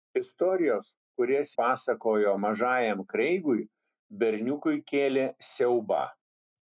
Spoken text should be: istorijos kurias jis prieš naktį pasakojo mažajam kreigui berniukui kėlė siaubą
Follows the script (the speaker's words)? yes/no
no